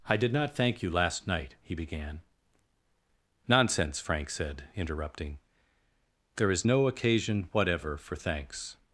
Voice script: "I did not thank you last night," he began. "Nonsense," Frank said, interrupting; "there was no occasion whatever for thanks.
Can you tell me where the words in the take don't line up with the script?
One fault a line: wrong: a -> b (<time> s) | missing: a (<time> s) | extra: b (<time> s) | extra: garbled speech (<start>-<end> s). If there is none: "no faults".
wrong: was -> is (6.5 s)